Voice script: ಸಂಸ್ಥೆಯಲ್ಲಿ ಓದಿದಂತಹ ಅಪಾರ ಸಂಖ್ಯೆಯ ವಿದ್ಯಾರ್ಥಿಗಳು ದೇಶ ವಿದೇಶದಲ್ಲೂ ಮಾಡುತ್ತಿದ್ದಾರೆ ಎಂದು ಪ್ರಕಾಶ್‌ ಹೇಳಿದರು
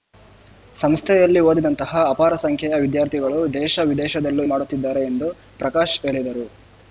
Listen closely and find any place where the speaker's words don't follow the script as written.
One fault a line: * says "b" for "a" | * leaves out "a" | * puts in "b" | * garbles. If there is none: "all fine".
all fine